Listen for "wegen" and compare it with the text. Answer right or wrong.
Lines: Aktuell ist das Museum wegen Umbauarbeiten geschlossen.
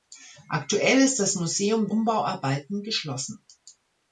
wrong